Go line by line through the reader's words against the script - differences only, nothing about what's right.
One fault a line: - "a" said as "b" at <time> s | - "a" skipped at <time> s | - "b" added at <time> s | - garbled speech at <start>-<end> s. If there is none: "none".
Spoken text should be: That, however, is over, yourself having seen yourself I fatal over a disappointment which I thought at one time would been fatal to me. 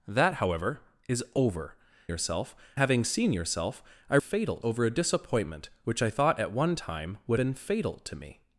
none